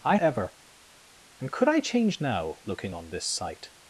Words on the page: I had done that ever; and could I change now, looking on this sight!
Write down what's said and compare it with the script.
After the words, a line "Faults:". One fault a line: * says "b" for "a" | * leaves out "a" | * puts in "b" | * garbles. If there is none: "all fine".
I ever; and could I change now, looking on this sight!
Faults:
* leaves out "had done that"